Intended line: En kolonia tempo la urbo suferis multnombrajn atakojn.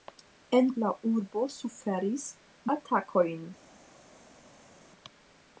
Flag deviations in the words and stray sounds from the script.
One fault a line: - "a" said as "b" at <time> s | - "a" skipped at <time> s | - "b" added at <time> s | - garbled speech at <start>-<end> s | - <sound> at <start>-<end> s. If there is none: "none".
- "kolonia tempo" skipped at 0.7 s
- "multnombrajn" skipped at 2.3 s